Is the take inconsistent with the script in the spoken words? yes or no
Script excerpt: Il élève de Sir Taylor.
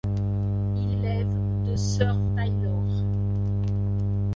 no